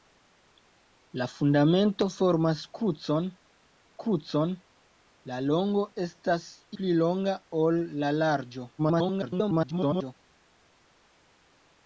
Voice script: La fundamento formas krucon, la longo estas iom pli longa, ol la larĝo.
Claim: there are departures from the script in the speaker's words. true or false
true